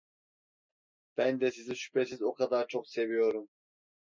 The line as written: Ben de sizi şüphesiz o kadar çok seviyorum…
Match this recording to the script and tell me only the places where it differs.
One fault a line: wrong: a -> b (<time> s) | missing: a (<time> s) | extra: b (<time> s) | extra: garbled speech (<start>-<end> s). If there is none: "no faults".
no faults